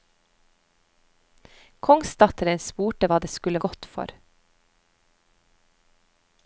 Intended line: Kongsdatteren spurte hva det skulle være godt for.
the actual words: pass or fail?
fail